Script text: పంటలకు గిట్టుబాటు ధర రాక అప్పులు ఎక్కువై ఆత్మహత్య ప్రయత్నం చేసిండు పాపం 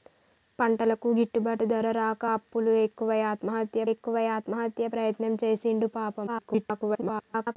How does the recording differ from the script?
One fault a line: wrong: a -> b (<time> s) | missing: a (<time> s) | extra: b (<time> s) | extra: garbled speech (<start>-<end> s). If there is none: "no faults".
extra: ఎక్కువై ఆత్మహత్య (3.9 s)
extra: garbled speech (6.3-7.6 s)